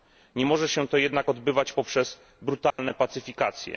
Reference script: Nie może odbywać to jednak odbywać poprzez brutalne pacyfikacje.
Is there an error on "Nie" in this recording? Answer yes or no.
no